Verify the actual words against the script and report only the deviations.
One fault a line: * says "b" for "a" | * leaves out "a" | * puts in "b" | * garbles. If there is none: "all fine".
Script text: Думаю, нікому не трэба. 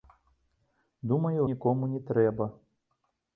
all fine